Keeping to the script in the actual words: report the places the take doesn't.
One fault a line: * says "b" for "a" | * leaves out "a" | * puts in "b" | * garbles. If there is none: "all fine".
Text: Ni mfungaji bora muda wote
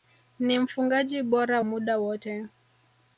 all fine